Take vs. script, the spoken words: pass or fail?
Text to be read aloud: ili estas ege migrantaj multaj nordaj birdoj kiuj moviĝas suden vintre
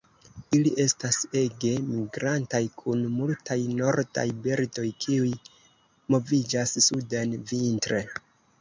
fail